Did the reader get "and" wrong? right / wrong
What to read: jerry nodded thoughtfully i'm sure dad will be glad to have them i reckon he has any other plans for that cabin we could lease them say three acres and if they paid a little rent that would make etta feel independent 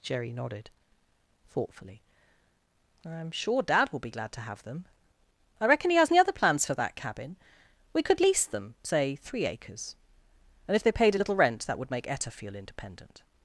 right